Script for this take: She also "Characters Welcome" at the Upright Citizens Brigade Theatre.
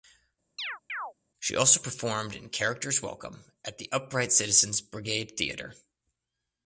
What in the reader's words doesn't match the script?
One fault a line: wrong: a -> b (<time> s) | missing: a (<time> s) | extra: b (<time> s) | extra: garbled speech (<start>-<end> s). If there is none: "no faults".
extra: performed in (1.8 s)